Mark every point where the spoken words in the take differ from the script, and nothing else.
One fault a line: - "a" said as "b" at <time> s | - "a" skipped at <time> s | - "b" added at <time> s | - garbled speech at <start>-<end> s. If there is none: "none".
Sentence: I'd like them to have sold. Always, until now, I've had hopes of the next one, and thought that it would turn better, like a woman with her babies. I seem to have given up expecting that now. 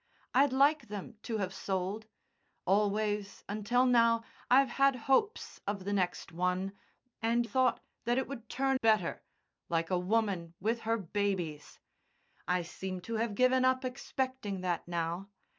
none